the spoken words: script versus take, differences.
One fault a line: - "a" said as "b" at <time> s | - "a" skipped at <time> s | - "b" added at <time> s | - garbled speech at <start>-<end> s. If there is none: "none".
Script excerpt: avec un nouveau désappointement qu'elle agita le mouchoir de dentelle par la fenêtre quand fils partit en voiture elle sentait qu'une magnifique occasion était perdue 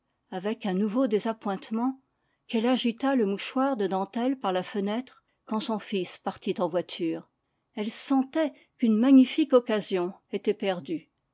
- "son" added at 5.6 s